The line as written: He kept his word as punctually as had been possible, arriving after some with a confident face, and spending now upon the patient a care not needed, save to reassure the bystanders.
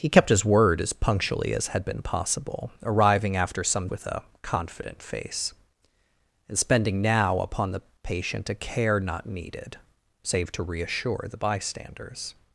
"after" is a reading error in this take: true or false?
false